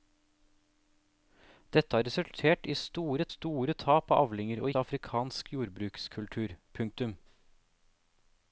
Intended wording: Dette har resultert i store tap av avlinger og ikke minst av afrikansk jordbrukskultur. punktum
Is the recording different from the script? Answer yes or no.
yes